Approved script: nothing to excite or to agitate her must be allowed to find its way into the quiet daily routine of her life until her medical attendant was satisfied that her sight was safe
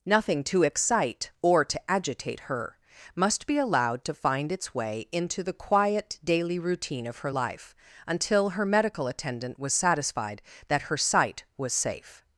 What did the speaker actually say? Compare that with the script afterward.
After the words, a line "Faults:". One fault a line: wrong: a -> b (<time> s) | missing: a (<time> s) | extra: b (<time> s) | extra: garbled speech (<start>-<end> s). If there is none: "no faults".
nothing to excite or to agitate her must be allowed to find its way into the quiet daily routine of her life until her medical attendant was satisfied that her sight was safe
Faults:
no faults